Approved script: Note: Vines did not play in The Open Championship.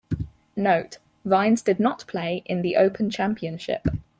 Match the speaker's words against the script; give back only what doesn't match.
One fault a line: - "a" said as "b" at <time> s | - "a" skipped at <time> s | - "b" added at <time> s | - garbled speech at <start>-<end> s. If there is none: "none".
none